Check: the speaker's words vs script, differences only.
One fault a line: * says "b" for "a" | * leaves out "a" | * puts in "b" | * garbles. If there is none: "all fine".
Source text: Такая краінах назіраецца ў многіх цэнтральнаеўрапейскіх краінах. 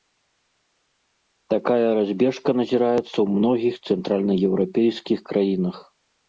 * says "разбежка" for "краінах"